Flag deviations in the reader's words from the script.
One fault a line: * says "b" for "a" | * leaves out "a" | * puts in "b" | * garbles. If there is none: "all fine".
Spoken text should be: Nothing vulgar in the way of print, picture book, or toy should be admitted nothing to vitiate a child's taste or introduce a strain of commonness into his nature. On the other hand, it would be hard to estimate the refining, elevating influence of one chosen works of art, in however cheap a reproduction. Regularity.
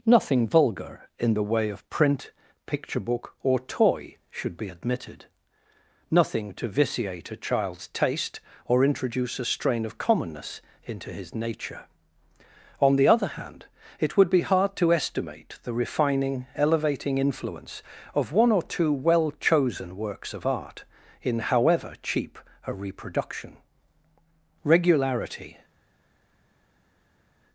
* puts in "or two well"